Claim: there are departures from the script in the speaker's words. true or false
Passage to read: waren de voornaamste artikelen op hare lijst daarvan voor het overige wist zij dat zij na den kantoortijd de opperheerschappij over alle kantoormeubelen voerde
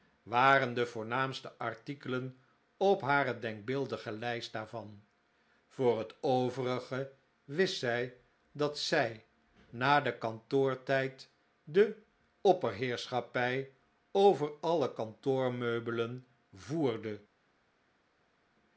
true